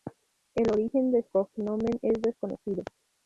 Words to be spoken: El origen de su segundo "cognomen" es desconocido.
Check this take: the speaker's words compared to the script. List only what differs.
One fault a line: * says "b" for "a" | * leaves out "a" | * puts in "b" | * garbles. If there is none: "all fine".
* leaves out "su segundo"